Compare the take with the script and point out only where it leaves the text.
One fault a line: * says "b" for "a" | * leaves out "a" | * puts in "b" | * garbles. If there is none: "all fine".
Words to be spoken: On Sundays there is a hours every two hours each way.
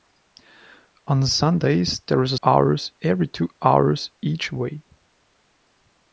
all fine